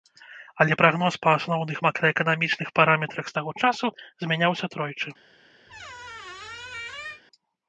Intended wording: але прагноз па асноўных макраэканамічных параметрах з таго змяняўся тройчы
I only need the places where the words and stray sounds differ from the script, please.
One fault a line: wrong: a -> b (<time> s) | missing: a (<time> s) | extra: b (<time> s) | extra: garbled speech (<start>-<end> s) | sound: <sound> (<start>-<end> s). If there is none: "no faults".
extra: часу (3.7 s)
sound: squeak (5.7-7.2 s)